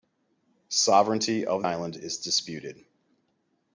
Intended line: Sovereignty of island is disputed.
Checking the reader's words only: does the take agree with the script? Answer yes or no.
yes